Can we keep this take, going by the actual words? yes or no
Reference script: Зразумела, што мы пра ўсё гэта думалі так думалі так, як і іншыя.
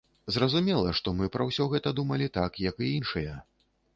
no